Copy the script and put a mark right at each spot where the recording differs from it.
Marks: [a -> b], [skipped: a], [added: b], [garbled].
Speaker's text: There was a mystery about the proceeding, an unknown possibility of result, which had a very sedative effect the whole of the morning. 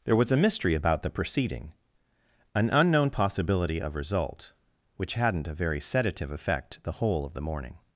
There was a mystery about the proceeding, an unknown possibility of result, which [had -> hadn't] a very sedative effect the whole of the morning.